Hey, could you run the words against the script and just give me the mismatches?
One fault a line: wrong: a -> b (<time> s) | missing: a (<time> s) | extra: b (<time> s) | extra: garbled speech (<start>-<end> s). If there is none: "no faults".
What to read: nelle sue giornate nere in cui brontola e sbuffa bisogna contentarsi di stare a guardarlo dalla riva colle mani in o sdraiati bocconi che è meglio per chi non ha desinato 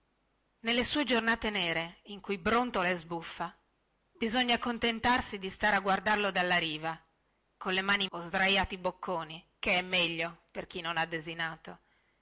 no faults